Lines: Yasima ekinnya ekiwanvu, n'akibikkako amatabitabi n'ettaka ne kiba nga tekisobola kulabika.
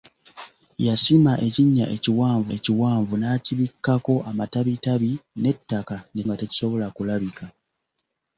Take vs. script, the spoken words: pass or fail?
fail